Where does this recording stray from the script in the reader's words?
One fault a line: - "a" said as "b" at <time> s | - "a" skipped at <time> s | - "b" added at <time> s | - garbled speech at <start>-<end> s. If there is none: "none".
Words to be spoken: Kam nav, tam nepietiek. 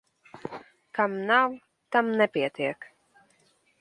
none